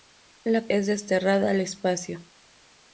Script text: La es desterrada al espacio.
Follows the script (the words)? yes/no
yes